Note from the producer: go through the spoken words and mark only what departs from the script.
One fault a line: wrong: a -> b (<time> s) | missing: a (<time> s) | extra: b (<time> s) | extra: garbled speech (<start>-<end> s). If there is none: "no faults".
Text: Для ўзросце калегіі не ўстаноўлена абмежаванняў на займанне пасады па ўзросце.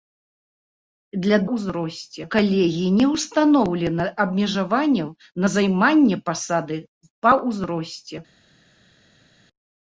no faults